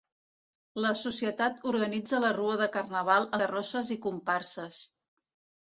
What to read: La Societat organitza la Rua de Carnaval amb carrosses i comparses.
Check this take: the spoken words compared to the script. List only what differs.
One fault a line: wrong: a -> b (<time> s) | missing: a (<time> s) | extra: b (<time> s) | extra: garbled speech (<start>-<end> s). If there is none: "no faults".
missing: amb (3.3 s)